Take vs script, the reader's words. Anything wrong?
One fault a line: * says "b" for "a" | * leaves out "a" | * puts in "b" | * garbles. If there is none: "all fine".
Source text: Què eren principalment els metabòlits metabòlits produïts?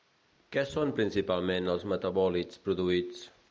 * says "són" for "eren"
* leaves out "metabòlits"